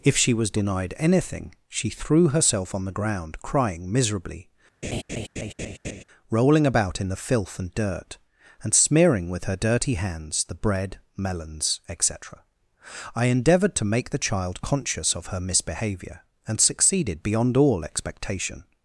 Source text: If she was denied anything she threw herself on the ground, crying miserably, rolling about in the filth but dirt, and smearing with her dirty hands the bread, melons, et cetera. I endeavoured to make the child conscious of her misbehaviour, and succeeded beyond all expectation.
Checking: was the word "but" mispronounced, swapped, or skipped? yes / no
yes